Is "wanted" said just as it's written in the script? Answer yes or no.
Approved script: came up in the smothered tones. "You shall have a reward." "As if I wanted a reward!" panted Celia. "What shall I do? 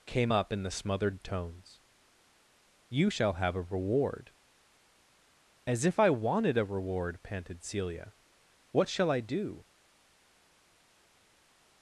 yes